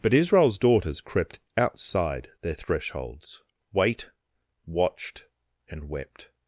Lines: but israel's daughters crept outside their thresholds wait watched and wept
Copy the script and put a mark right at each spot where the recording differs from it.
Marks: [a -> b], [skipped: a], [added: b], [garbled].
but israel's daughters crept outside their thresholds wait watched and wept